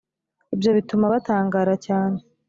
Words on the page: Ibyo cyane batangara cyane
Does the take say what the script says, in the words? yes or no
no